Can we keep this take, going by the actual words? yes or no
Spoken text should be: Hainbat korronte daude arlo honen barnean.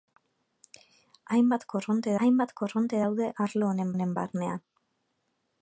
no